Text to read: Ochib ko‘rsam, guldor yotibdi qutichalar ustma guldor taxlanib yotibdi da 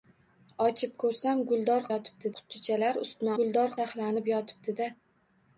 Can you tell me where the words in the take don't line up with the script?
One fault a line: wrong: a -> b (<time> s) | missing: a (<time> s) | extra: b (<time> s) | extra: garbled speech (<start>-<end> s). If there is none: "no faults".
no faults